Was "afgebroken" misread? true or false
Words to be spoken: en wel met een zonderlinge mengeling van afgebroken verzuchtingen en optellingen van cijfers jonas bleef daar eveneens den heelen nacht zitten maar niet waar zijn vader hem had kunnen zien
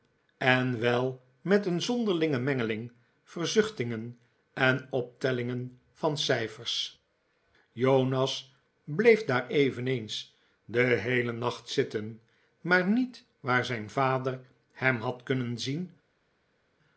true